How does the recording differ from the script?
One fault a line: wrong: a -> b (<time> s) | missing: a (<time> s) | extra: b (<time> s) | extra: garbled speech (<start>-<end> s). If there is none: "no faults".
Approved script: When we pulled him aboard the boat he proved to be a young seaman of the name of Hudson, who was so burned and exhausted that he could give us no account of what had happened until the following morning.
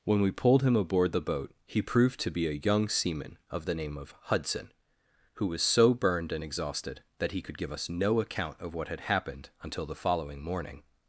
no faults